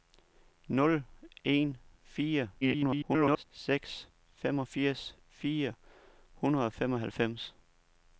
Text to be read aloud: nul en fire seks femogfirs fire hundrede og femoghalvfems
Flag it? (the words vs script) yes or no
yes